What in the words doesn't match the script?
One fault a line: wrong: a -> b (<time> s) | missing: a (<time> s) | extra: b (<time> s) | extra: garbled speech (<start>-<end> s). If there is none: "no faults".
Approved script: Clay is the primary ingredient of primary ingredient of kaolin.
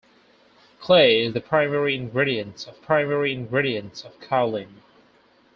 no faults